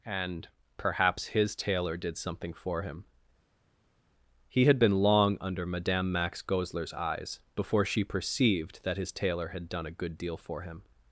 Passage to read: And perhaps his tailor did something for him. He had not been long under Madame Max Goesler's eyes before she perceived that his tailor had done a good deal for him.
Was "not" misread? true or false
true